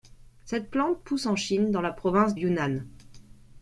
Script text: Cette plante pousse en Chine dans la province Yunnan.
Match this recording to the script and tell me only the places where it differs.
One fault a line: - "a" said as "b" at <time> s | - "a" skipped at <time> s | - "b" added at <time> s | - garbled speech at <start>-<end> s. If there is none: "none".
none